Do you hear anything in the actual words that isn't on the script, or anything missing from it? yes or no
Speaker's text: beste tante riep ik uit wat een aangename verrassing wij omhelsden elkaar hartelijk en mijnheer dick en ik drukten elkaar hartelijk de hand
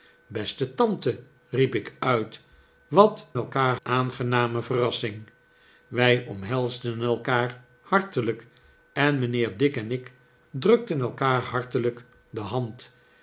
yes